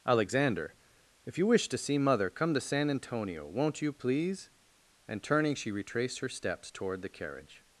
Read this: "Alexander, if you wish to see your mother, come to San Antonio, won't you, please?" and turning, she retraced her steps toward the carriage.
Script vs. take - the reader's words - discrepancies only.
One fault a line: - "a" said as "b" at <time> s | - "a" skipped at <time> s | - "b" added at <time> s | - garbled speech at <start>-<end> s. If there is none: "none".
- "your" skipped at 2.0 s